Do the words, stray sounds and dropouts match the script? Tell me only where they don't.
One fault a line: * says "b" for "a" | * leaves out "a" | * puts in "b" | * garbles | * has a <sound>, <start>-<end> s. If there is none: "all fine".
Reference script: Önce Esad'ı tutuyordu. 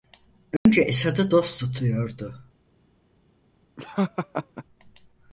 * has a dropout, 0.6-0.7 s
* puts in "dost"
* has a laugh, 3.8-4.6 s